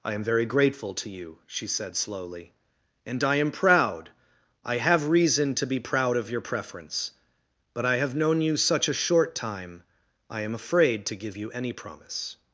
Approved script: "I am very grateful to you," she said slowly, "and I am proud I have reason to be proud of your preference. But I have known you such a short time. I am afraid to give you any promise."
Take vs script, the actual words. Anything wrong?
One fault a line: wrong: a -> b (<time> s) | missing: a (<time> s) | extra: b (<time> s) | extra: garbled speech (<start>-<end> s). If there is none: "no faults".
no faults